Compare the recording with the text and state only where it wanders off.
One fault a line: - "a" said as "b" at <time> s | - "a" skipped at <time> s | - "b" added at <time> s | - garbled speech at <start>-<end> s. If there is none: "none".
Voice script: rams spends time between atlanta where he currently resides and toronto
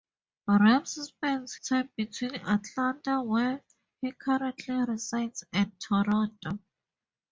none